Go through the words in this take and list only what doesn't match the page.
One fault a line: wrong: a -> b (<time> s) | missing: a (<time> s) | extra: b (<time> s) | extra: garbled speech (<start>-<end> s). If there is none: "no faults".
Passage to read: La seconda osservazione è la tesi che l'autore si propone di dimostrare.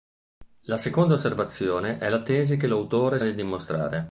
missing: si propone (3.2 s)